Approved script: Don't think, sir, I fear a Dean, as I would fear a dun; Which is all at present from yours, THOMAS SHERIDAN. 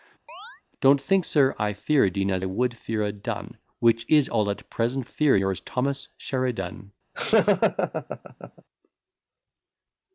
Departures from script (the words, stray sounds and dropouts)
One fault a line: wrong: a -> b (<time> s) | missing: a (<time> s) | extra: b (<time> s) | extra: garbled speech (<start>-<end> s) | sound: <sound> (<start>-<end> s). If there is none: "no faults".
sound: chirp (0.3-0.6 s)
missing: I (2.4 s)
wrong: from -> fear (5.1 s)
sound: laugh (7.1-8.6 s)